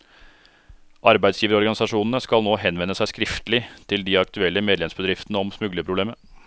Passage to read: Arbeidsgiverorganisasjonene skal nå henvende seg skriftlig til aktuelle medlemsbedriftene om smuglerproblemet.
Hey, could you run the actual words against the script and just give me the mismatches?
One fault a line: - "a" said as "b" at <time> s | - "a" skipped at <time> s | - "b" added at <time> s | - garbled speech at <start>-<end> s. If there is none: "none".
- "de" added at 4.1 s